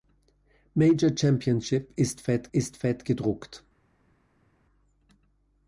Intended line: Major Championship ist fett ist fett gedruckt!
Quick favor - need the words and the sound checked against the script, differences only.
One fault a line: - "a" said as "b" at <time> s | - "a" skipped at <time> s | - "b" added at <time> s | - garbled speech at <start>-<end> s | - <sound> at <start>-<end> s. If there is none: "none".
none